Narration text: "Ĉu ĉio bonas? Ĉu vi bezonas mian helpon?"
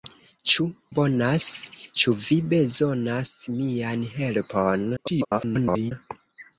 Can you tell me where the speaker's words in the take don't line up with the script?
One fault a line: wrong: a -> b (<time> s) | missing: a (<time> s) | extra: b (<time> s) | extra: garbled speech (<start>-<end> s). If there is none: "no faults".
missing: ĉio (0.6 s)
extra: garbled speech (5.0-5.9 s)